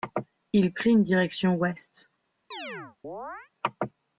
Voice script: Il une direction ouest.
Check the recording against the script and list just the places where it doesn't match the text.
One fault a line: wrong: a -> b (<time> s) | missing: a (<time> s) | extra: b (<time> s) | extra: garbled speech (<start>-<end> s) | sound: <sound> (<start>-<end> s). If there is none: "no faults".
extra: prit (0.7 s)
sound: chirp (2.5-3.5 s)